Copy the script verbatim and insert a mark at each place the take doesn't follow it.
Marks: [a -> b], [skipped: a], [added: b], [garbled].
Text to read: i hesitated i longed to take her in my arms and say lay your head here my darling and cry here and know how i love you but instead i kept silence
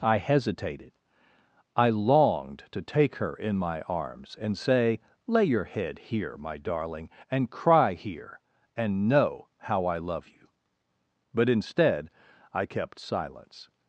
i hesitated i longed to take her in my arms and say lay your head here my darling and cry here and know how i love you but instead i kept silence